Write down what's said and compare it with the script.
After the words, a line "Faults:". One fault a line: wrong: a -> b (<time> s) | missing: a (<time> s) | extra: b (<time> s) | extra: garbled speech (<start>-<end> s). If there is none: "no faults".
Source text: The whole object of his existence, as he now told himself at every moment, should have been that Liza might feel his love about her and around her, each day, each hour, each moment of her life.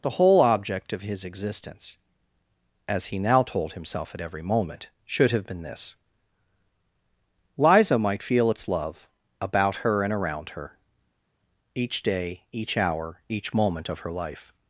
The whole object of his existence, as he now told himself at every moment, should have been this Liza might feel its love about her and around her, each day, each hour, each moment of her life.
Faults:
wrong: that -> this (5.6 s)
wrong: his -> its (8.5 s)